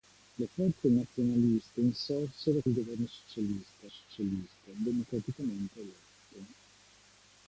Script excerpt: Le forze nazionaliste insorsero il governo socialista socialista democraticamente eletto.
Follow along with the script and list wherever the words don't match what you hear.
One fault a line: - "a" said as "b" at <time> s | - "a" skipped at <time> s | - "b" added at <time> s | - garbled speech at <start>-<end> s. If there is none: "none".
none